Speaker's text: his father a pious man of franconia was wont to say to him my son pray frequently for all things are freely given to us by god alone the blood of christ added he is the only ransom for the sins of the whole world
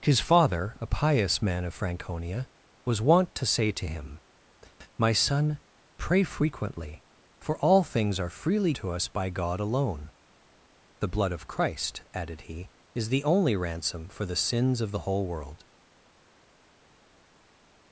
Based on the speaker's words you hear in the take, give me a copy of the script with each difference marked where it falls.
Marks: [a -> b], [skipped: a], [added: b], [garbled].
his father a pious man of franconia was wont to say to him my son pray frequently for all things are freely [skipped: given] to us by god alone the blood of christ added he is the only ransom for the sins of the whole world